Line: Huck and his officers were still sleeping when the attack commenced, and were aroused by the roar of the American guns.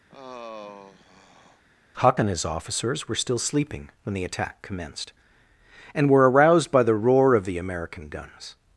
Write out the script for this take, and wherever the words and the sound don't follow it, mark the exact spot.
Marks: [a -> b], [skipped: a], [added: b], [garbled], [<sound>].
[sigh] Huck and his officers were still sleeping when the attack commenced, and were aroused by the roar of the American guns.